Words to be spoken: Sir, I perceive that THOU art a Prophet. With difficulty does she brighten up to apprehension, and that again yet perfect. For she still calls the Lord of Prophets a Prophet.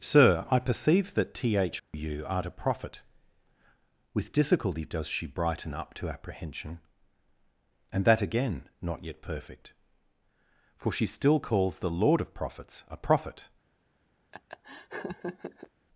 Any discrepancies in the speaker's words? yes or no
yes